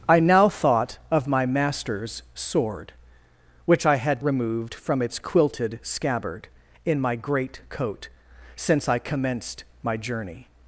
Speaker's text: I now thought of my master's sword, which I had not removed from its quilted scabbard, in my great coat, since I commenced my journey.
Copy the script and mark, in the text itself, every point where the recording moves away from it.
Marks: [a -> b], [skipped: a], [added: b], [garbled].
I now thought of my master's sword, which I had [skipped: not] removed from its quilted scabbard, in my great coat, since I commenced my journey.